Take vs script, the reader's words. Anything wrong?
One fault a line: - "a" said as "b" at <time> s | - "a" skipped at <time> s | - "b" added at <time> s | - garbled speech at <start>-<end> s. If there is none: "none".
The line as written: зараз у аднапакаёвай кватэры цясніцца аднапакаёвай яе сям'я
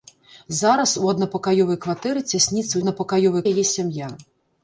none